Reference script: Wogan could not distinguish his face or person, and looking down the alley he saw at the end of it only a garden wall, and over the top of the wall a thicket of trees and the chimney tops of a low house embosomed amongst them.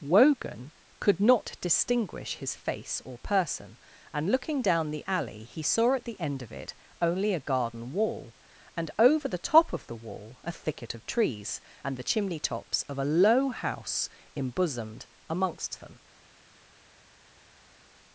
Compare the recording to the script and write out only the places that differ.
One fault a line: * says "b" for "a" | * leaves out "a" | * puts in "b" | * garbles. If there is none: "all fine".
all fine